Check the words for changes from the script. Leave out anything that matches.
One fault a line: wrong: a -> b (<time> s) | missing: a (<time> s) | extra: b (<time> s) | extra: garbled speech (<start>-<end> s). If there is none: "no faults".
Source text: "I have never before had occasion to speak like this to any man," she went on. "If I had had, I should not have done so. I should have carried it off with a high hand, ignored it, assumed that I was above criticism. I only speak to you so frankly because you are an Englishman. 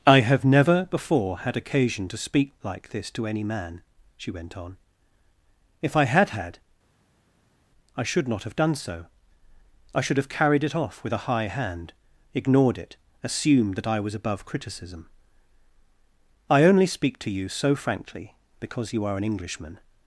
no faults